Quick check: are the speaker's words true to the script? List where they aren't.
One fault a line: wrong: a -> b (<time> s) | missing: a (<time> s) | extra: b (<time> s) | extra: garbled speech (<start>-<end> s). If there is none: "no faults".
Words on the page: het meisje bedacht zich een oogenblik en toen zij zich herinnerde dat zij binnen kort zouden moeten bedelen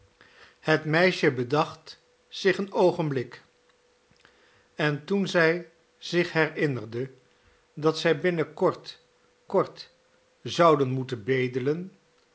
extra: kort (9.5 s)